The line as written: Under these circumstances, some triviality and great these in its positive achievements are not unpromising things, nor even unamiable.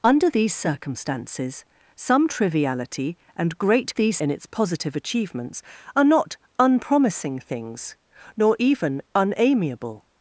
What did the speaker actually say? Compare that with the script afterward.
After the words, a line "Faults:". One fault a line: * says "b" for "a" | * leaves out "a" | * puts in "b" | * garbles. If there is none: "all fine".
Under these circumstances, some triviality and great these in its positive achievements are not unpromising things, nor even unamiable.
Faults:
all fine